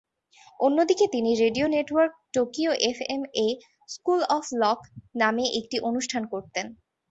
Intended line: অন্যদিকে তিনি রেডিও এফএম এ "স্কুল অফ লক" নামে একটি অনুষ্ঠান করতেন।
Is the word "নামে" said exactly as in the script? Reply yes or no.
yes